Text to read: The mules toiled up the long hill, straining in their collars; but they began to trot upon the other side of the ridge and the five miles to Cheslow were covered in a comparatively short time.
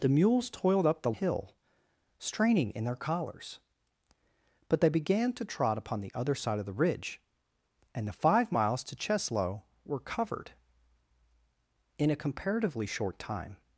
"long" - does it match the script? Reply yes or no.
no